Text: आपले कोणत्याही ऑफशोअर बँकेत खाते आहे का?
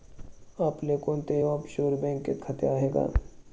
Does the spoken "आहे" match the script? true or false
true